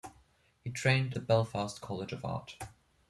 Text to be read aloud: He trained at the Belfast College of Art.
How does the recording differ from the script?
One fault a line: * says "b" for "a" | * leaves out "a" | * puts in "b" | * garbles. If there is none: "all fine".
* leaves out "at"